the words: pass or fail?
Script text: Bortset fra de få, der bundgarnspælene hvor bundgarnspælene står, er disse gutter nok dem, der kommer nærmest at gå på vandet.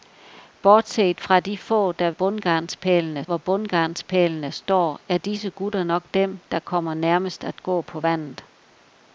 pass